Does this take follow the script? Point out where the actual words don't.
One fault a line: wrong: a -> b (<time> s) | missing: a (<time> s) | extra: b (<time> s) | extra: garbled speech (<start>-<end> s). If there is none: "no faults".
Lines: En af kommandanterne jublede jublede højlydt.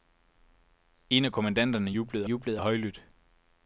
no faults